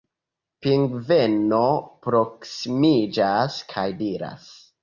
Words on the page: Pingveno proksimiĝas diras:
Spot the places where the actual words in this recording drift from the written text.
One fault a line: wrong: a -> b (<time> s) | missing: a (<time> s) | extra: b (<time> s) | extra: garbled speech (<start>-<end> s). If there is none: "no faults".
extra: kaj (3.7 s)